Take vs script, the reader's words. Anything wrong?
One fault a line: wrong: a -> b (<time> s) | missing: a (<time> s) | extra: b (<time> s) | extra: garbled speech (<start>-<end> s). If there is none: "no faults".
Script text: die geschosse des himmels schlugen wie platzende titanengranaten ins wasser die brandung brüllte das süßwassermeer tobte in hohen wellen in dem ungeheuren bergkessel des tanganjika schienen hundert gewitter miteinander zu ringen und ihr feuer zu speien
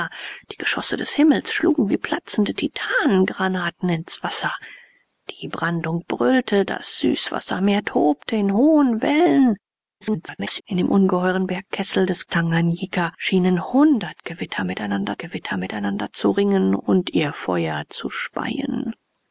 extra: garbled speech (10.0-10.6 s)
extra: gewitter miteinander (15.2 s)